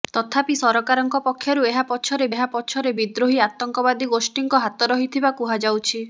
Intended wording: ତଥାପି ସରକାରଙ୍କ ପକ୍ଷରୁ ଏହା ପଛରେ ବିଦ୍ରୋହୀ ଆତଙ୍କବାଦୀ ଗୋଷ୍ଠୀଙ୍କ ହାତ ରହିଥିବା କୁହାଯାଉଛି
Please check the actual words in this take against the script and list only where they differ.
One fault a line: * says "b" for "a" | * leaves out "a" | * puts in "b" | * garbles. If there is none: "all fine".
* puts in "ଏହା ପଛରେ"